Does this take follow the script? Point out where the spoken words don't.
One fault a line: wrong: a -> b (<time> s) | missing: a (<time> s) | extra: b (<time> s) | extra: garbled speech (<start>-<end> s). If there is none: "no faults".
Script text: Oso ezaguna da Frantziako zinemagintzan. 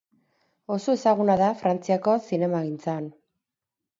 no faults